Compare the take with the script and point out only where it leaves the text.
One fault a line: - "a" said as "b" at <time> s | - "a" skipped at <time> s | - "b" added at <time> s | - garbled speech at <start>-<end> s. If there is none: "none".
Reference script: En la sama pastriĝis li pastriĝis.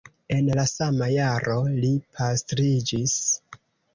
- "pastriĝis" said as "jaro" at 1.1 s